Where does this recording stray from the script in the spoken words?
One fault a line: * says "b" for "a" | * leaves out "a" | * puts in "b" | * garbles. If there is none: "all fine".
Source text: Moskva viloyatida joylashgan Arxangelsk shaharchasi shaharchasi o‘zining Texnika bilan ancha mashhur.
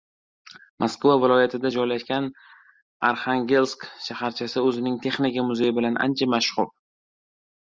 * leaves out "shaharchasi"
* puts in "muzeyi"